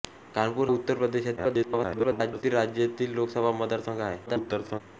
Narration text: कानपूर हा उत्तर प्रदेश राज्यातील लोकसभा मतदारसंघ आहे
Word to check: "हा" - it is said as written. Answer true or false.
false